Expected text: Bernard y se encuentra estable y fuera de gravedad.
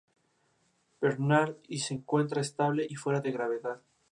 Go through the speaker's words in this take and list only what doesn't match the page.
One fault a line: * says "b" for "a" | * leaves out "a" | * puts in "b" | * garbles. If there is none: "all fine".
all fine